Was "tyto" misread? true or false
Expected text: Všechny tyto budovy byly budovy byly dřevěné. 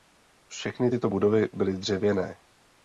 false